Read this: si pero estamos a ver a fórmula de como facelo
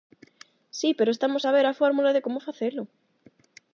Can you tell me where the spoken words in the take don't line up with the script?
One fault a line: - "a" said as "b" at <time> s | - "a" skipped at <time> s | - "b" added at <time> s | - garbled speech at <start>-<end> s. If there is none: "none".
none